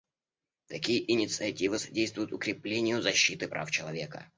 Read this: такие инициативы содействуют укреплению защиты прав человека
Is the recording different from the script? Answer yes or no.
no